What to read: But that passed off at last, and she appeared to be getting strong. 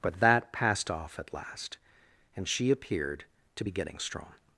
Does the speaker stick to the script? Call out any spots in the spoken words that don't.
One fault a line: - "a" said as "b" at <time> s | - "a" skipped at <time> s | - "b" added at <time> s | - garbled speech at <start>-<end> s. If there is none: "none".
none